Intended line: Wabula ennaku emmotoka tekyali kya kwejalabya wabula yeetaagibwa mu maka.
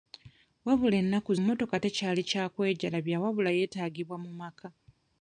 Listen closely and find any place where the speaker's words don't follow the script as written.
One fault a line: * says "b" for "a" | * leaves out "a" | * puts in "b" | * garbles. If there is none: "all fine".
all fine